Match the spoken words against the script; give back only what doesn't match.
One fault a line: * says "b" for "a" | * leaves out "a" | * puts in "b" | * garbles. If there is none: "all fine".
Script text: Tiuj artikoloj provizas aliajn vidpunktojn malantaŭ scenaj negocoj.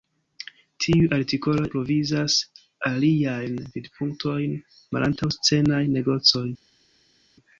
all fine